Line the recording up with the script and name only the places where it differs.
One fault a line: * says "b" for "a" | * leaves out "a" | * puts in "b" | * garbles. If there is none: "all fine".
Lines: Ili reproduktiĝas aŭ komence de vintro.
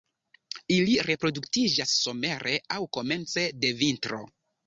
* puts in "somere"